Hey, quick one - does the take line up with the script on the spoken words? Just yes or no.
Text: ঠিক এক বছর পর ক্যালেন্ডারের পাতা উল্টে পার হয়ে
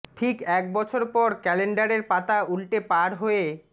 yes